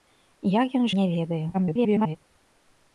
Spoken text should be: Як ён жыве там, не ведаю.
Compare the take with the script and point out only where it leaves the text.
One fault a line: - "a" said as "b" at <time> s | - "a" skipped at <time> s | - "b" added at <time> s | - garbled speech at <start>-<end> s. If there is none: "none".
- "жыве там" skipped at 0.9 s
- garbled speech at 1.5-2.2 s